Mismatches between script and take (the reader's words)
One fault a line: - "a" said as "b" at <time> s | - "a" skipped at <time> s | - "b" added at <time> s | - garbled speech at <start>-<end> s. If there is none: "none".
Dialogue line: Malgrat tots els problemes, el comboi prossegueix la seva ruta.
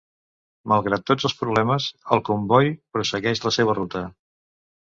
none